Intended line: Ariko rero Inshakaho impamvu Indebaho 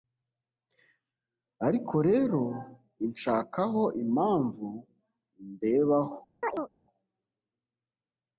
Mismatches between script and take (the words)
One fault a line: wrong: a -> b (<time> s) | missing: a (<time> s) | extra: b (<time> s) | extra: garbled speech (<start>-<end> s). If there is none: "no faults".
no faults